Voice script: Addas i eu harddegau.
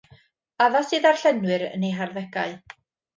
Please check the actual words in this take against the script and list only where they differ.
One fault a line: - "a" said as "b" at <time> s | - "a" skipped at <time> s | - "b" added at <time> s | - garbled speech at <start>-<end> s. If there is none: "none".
- "ddarllenwyr yn" added at 1.0 s